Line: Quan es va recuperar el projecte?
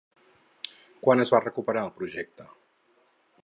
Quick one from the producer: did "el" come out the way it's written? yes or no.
yes